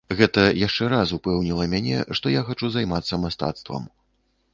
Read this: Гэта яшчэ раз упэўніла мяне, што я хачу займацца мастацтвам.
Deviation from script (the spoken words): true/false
false